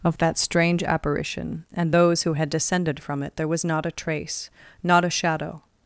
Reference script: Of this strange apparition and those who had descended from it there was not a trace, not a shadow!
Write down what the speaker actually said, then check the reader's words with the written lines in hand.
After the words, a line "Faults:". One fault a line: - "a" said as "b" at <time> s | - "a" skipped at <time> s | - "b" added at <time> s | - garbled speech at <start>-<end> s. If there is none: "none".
Of that strange apparition and those who had descended from it there was not a trace, not a shadow!
Faults:
- "this" said as "that" at 0.2 s